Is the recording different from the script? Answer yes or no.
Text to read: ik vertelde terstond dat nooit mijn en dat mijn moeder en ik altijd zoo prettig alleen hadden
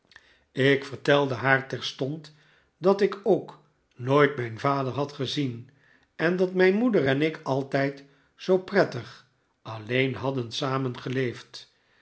yes